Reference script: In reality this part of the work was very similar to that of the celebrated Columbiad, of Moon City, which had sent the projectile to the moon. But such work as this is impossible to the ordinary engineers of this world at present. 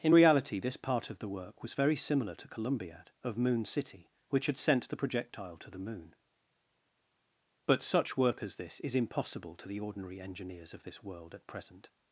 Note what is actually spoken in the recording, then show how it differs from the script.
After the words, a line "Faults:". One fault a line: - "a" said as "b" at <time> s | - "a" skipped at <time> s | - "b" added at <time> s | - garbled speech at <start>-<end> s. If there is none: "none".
In reality this part of the work was very similar to Columbiad, of Moon City, which had sent the projectile to the moon. But such work as this is impossible to the ordinary engineers of this world at present.
Faults:
- "that of the celebrated" skipped at 2.5 s